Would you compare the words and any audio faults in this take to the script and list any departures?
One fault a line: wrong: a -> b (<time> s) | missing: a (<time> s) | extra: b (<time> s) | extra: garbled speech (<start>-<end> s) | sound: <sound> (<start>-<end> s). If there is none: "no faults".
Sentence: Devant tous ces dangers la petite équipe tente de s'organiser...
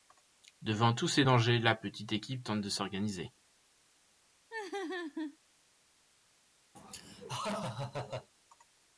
sound: laugh (4.5-5.4 s)
sound: laugh (6.7-8.3 s)